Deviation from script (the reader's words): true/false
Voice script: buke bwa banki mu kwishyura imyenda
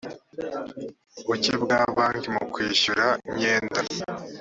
false